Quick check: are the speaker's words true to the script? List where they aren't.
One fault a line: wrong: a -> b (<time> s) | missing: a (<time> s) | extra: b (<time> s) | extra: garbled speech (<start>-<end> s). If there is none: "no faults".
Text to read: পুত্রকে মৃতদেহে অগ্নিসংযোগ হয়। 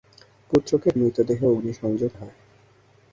no faults